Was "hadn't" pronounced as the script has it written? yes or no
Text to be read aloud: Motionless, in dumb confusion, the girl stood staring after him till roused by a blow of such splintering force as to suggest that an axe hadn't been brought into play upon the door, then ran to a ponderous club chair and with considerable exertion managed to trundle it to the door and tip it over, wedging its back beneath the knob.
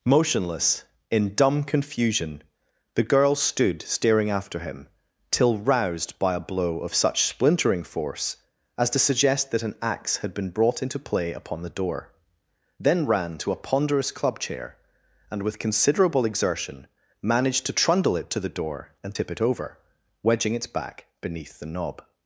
no